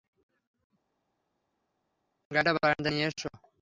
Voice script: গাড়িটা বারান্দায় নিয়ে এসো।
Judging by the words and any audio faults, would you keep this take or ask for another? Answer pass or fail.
pass